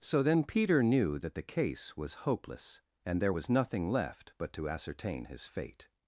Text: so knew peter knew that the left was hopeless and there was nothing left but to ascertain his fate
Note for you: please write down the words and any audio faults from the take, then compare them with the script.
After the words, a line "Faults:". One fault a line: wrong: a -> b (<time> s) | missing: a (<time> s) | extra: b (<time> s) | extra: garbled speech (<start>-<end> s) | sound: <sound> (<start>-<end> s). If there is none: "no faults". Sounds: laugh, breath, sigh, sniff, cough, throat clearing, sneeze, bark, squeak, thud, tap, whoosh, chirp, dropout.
so then peter knew that the case was hopeless and there was nothing left but to ascertain his fate
Faults:
wrong: knew -> then (0.2 s)
wrong: left -> case (1.4 s)